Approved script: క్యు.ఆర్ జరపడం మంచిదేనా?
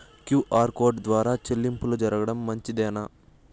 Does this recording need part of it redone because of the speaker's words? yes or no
yes